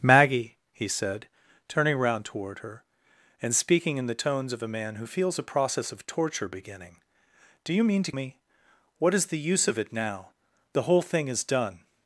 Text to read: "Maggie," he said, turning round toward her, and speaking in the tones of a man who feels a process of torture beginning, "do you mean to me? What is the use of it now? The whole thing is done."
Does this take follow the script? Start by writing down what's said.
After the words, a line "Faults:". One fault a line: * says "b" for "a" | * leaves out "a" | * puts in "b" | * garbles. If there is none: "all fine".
"Maggie," he said, turning round toward her, and speaking in the tones of a man who feels a process of torture beginning, "do you mean to me? What is the use of it now? The whole thing is done."
Faults:
all fine